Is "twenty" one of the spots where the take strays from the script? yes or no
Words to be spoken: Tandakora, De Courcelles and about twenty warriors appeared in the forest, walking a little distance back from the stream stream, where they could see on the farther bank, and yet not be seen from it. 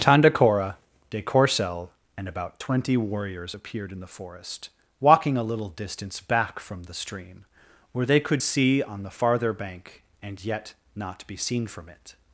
no